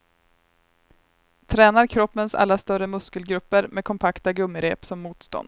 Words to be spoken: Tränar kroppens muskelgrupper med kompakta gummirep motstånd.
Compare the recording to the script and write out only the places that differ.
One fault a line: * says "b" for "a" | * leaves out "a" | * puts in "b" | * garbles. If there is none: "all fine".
* puts in "alla större"
* puts in "som"